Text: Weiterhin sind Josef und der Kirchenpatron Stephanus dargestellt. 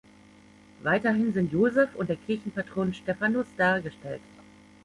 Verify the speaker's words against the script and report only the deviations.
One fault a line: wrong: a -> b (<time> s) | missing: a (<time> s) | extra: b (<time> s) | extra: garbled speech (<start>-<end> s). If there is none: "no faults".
no faults